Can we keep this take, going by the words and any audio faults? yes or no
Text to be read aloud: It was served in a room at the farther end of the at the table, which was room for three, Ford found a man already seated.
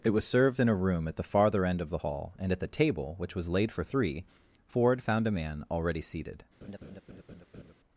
no